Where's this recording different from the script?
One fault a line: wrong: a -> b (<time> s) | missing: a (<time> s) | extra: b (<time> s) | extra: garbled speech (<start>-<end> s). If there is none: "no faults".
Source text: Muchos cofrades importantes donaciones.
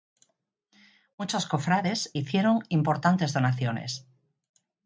extra: hicieron (2.1 s)